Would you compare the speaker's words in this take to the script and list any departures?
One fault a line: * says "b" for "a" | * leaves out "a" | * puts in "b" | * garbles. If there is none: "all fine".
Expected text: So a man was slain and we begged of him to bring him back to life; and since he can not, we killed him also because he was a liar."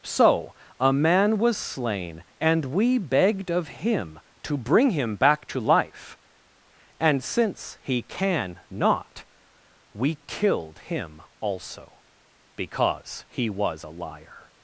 all fine